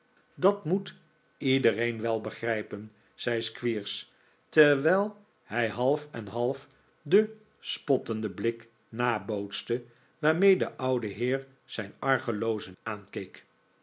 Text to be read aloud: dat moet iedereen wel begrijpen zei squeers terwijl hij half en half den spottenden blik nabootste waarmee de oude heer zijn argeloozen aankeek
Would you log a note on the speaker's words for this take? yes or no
no